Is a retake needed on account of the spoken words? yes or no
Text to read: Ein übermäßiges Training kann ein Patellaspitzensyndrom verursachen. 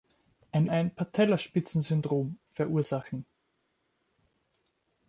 yes